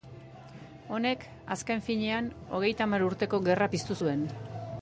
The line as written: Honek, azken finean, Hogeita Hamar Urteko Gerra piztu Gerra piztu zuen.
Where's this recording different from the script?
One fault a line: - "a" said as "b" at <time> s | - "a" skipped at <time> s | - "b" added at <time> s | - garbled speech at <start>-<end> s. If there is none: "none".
- "Gerra piztu" skipped at 4.0 s